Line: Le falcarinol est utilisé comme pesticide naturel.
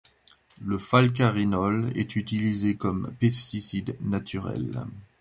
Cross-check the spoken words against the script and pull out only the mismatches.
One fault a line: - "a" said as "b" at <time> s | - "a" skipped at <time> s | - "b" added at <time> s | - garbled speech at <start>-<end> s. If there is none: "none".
none